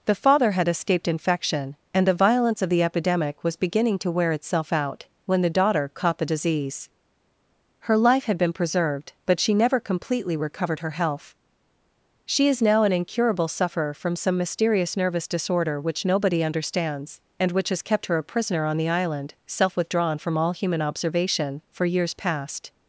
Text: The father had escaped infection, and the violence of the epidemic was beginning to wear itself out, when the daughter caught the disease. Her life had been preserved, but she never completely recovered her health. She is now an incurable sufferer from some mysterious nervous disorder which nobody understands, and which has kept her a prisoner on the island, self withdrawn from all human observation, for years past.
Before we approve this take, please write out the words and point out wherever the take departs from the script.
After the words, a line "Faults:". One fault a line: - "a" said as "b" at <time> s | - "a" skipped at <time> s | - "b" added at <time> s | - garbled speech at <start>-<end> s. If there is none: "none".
The father had escaped infection, and the violence of the epidemic was beginning to wear itself out, when the daughter caught the disease. Her life had been preserved, but she never completely recovered her health. She is now an incurable sufferer from some mysterious nervous disorder which nobody understands, and which has kept her a prisoner on the island, self withdrawn from all human observation, for years past.
Faults:
none